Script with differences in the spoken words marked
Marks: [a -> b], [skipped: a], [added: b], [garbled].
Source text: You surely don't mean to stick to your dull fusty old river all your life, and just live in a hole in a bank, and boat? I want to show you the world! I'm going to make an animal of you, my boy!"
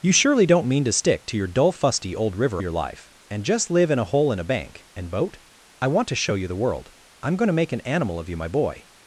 You surely don't mean to stick to your dull fusty old river [skipped: all] your life, and just live in a hole in a bank, and boat? I want to show you the world! I'm going to make an animal of you, my boy!"